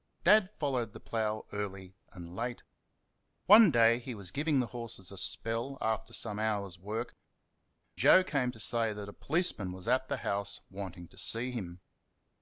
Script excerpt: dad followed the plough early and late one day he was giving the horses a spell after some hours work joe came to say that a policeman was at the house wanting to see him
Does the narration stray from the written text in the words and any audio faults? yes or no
no